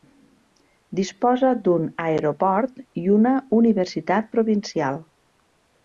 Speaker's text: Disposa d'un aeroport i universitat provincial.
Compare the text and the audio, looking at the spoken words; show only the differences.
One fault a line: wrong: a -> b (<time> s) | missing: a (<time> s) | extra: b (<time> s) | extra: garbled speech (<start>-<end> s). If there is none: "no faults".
extra: una (3.2 s)